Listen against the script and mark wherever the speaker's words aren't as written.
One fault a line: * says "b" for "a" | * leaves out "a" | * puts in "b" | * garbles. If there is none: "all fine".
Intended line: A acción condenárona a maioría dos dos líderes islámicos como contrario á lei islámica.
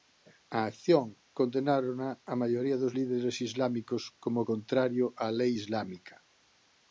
* leaves out "dos"